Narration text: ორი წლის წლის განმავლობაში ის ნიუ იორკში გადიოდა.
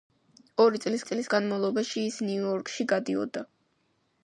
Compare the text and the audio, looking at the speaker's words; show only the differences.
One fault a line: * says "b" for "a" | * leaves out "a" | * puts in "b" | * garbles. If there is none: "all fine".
all fine